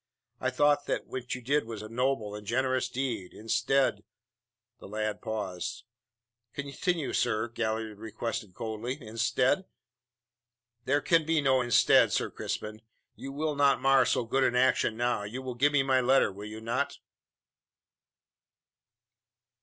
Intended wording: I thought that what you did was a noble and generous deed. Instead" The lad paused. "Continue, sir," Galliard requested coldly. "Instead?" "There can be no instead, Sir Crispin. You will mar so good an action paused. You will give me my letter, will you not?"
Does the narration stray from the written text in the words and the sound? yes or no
yes